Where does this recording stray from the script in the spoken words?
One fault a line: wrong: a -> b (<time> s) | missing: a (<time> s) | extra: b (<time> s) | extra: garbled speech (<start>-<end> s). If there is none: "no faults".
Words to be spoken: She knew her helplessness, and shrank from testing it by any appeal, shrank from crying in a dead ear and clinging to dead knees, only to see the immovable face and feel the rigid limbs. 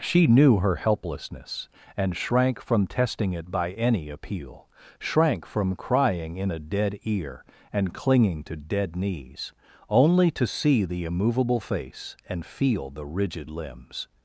no faults